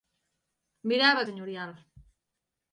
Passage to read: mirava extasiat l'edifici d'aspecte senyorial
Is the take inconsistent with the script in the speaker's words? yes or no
yes